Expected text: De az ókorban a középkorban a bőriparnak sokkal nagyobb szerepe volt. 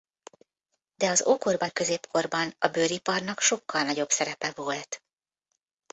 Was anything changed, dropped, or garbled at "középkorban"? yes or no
no